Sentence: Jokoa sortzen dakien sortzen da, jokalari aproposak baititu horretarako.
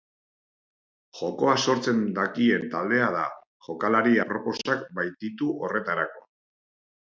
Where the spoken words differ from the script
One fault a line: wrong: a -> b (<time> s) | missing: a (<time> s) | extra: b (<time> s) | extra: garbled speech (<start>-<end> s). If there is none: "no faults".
wrong: sortzen -> taldea (2.7 s)